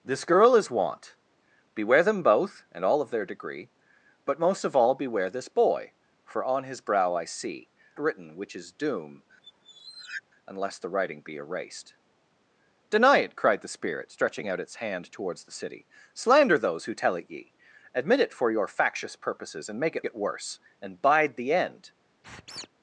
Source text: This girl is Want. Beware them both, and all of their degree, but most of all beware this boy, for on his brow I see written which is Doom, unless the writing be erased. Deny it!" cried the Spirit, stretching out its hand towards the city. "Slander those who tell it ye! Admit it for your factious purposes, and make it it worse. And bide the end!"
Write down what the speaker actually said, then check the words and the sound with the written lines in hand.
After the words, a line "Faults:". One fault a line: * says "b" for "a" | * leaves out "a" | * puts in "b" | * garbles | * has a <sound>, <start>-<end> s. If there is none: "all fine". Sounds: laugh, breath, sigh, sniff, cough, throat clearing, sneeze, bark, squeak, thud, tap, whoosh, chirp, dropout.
This girl is Want. Beware them both, and all of their degree, but most of all beware this boy, for on his brow I see written which is Doom, unless the writing be erased. Deny it!" cried the Spirit, stretching out its hand towards the city. "Slander those who tell it ye! Admit it for your factious purposes, and make it it worse. And bide the end!"
Faults:
* has a squeak, 9.4-10.2 s
* has a squeak, 22.2-22.7 s